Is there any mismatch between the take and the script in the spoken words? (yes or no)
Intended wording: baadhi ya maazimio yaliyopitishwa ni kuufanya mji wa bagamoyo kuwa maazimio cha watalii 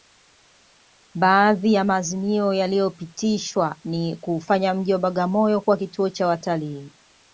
yes